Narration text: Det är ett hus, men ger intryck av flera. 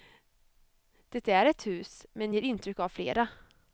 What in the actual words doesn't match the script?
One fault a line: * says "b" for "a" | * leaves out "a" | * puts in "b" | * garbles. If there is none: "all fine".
all fine